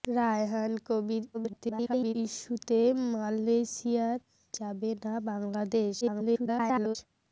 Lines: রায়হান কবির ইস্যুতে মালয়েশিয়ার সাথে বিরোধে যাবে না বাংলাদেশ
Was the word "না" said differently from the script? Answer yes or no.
no